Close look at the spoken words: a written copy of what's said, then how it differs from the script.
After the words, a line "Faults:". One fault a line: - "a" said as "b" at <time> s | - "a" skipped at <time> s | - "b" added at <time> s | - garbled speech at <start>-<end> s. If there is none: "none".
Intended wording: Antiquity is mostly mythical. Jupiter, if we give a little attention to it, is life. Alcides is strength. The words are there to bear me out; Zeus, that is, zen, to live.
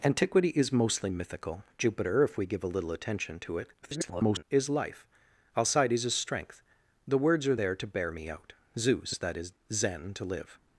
Antiquity is mostly mythical. Jupiter, if we give a little attention to it, [garbled] is life. Alcides is strength. The words are there to bear me out; Zeus, that is, zen, to live.
Faults:
- garbled speech at 3.8-4.4 s